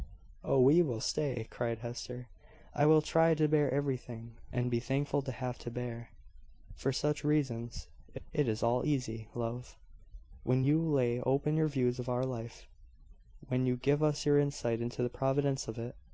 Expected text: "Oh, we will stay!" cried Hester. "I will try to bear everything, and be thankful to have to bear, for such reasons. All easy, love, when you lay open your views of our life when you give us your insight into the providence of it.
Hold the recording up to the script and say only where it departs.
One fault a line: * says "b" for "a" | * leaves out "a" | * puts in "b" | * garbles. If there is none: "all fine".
* puts in "It is"